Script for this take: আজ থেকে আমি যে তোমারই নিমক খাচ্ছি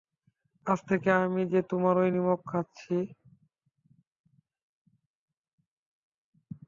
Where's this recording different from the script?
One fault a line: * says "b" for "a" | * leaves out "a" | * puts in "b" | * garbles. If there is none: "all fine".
all fine